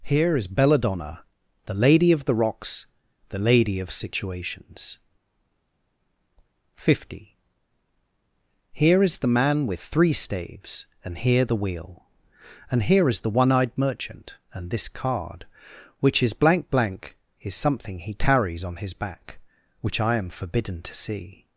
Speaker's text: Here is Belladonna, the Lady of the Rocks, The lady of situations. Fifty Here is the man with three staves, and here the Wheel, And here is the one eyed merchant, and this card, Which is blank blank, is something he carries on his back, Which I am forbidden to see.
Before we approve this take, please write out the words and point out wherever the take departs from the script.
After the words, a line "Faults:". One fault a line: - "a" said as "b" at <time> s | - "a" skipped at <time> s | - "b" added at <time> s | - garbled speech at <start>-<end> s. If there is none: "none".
Here is Belladonna, the Lady of the Rocks, The lady of situations. Fifty Here is the man with three staves, and here the Wheel, And here is the one eyed merchant, and this card, Which is blank blank, is something he carries on his back, Which I am forbidden to see.
Faults:
none